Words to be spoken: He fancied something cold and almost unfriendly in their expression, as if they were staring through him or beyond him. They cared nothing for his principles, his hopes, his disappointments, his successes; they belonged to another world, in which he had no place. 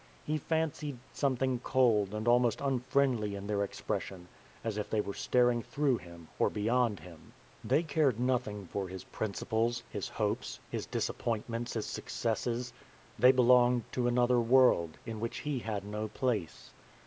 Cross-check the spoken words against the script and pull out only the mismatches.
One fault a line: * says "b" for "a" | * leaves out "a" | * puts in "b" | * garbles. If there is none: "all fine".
all fine